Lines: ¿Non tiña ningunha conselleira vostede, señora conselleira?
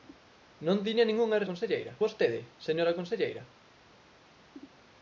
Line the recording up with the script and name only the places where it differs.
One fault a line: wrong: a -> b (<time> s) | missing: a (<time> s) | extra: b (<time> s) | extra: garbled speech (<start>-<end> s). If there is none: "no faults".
no faults